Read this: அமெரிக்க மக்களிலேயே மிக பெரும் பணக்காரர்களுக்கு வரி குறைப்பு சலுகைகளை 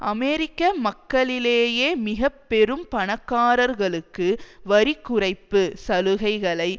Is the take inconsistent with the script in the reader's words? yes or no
no